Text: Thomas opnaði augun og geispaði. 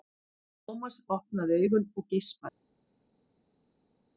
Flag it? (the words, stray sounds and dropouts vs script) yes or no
no